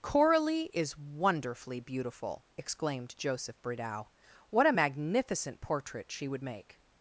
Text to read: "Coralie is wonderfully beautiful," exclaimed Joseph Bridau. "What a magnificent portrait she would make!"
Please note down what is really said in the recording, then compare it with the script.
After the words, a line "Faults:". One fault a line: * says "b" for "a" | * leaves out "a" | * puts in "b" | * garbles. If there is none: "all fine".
"Coralie is wonderfully beautiful," exclaimed Joseph Bridau. "What a magnificent portrait she would make!"
Faults:
all fine